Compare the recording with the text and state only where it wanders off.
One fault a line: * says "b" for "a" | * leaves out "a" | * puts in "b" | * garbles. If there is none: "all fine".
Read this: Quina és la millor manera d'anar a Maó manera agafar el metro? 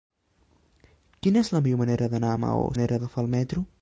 all fine